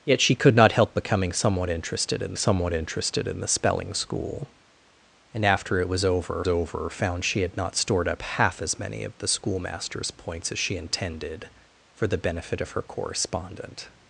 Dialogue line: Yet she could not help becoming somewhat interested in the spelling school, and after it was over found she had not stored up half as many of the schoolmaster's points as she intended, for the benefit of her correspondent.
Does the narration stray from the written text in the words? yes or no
yes